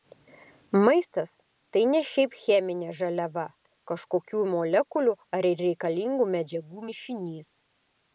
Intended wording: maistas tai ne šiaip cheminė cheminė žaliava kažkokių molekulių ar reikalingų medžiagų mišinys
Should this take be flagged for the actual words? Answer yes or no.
yes